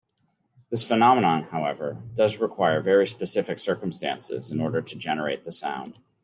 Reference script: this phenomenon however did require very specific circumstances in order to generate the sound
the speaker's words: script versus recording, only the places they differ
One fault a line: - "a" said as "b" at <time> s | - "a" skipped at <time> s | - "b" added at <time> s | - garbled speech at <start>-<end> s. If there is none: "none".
- "did" said as "does" at 2.1 s